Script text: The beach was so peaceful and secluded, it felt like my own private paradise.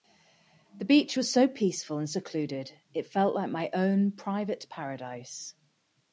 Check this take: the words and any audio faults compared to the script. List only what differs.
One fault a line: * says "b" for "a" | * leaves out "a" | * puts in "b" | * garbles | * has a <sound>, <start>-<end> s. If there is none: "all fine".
all fine